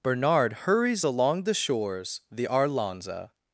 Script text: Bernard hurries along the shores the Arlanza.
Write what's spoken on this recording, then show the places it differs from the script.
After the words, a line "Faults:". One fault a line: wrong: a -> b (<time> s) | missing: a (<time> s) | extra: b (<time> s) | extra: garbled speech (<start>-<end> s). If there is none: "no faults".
Bernard hurries along the shores the Arlanza.
Faults:
no faults